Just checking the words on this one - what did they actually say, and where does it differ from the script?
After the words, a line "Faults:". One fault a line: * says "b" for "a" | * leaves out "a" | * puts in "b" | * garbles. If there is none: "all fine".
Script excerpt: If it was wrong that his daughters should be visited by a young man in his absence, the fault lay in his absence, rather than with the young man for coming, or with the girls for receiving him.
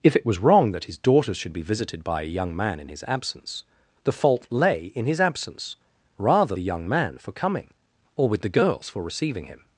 If it was wrong that his daughters should be visited by a young man in his absence, the fault lay in his absence, rather the young man for coming, or with the girls for receiving him.
Faults:
* leaves out "than with"